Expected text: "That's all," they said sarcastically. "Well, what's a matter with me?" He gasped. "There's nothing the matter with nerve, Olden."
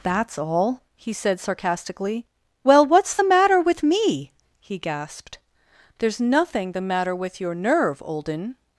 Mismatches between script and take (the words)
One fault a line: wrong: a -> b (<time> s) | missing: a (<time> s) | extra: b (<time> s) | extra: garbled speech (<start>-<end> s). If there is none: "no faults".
wrong: they -> he (0.9 s)
wrong: a -> the (3.1 s)
extra: your (7.4 s)